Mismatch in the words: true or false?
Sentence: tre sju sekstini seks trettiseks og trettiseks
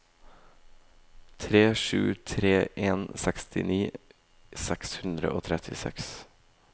true